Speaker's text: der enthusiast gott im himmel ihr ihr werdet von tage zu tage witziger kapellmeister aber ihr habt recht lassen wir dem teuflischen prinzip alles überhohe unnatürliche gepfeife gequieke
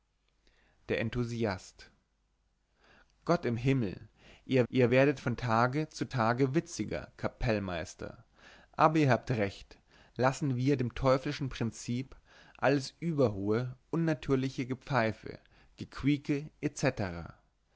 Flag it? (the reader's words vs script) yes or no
no